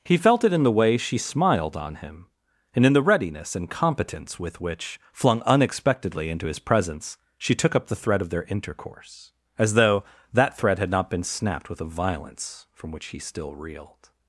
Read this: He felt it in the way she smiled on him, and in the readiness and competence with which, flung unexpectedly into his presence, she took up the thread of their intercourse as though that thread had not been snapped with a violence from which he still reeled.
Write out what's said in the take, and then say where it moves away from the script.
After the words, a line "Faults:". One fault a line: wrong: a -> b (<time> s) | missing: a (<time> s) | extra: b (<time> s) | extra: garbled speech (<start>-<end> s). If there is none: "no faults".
He felt it in the way she smiled on him, and in the readiness and competence with which, flung unexpectedly into his presence, she took up the thread of their intercourse as though that thread had not been snapped with a violence from which he still reeled.
Faults:
no faults